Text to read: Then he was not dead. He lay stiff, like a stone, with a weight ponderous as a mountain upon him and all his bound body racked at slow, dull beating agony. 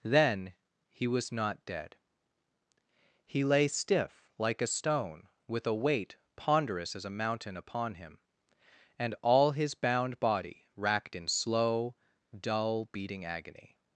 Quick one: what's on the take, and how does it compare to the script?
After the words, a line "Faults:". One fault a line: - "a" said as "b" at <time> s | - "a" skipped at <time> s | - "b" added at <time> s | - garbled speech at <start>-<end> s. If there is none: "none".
Then he was not dead. He lay stiff, like a stone, with a weight ponderous as a mountain upon him and all his bound body racked in slow, dull beating agony.
Faults:
- "at" said as "in" at 11.2 s